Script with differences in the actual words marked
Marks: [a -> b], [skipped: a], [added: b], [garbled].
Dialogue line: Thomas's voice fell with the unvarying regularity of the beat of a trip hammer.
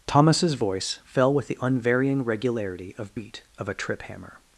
Thomas's voice fell with the unvarying regularity of [skipped: the] beat of a trip hammer.